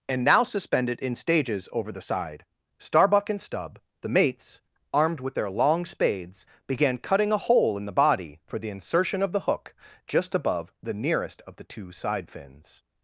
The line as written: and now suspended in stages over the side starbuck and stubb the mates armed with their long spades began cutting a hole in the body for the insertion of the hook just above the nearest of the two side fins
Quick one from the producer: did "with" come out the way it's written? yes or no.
yes